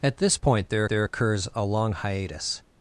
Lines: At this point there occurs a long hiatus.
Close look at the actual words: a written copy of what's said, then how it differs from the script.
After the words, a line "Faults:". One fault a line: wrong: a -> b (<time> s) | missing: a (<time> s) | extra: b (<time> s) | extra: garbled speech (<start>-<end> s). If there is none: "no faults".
At this point there there occurs a long hiatus.
Faults:
extra: there (0.9 s)